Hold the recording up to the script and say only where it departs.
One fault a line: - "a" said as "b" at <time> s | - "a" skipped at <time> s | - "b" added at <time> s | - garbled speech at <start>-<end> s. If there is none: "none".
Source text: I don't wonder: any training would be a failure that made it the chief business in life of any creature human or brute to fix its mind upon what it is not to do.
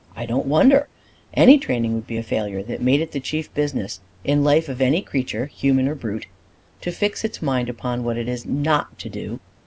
none